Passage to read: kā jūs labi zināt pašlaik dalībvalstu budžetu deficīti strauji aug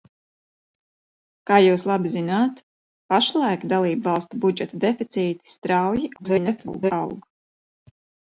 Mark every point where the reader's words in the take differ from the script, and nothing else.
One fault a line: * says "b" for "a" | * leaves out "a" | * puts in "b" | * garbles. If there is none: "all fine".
* garbles